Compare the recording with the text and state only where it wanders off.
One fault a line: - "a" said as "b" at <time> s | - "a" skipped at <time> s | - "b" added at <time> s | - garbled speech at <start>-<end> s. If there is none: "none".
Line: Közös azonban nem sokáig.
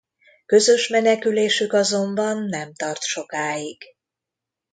- "menekülésük" added at 0.9 s
- "tart" added at 2.7 s